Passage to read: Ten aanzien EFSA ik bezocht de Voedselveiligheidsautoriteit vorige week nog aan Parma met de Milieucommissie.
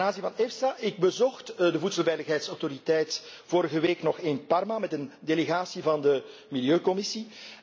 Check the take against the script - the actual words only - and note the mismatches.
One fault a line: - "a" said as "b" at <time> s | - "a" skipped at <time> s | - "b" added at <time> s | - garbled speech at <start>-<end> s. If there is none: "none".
- "van" added at 0.3 s
- "aan" said as "in" at 4.2 s
- "een delegatie van" added at 4.9 s